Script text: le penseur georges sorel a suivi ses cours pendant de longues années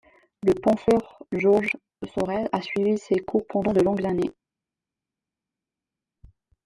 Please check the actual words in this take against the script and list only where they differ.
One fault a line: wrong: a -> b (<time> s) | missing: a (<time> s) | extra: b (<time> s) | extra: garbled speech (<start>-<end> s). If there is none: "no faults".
no faults